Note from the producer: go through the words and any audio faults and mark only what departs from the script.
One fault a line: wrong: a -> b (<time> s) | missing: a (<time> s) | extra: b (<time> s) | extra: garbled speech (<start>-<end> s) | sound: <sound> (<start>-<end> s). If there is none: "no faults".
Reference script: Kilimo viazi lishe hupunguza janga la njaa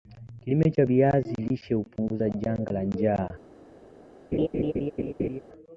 extra: cha (0.7 s)
sound: laugh (4.3-5.4 s)